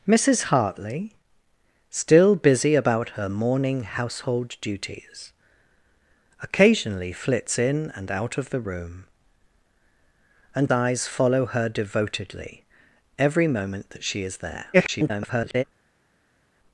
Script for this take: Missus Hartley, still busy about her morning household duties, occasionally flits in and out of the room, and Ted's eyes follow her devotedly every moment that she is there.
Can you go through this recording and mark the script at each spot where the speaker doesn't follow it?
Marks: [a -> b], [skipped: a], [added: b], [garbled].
Missus Hartley, still busy about her morning household duties, occasionally flits in and out of the room, and [skipped: Ted's] eyes follow her devotedly every moment that she is there. [garbled]